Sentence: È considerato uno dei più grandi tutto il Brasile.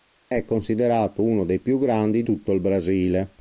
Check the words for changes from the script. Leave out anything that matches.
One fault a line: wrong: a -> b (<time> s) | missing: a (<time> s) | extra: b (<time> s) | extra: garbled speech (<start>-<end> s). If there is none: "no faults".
no faults